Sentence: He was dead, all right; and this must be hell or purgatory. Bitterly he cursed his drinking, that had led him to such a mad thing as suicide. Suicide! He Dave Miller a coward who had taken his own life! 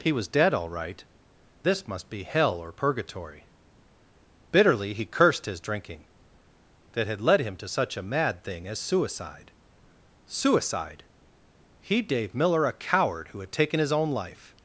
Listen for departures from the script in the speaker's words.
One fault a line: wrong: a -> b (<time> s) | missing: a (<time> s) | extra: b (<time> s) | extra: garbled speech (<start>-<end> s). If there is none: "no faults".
missing: and (1.0 s)